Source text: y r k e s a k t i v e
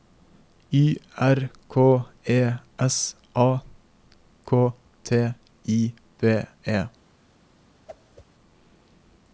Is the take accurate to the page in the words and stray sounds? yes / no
no